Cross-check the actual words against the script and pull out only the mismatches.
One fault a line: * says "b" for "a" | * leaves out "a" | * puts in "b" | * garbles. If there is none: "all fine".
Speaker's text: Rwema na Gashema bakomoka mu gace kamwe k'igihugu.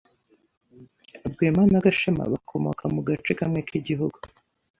all fine